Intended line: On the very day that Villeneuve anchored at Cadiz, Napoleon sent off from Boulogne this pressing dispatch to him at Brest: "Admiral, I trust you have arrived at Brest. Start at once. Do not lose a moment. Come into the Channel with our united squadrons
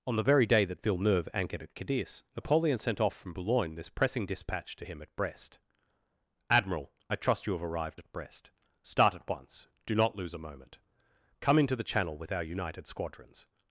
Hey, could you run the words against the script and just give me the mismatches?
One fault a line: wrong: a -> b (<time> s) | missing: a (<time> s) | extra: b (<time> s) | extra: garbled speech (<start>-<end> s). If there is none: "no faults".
no faults